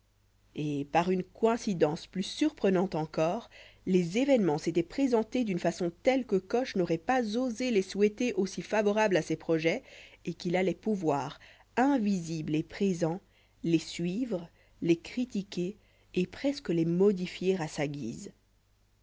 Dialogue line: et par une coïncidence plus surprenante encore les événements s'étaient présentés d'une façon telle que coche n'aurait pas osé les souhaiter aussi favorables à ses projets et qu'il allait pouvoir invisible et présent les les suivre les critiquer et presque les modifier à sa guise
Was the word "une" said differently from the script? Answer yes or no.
no